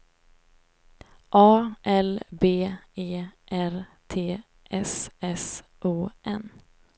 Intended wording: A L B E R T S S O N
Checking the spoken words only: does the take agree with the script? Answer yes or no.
yes